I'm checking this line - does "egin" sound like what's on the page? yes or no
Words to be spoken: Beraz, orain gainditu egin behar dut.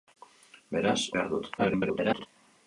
no